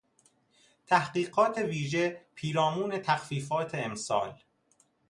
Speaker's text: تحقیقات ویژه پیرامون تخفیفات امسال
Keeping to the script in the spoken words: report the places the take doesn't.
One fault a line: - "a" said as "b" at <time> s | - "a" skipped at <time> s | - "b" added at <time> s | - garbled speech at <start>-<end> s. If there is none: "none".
none